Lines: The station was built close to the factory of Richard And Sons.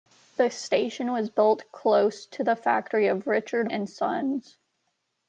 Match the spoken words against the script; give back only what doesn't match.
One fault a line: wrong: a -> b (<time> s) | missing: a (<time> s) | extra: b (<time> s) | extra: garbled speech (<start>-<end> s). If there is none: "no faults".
no faults